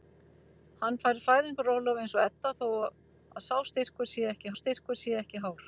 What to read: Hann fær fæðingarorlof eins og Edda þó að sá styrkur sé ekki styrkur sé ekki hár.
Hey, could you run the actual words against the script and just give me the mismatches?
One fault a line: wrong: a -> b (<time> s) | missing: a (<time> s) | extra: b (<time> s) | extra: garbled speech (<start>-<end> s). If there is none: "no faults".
no faults